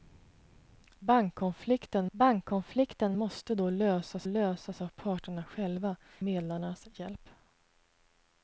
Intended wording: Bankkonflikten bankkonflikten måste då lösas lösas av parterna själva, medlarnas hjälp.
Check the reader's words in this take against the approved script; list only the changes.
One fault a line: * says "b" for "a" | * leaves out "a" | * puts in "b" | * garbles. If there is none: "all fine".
all fine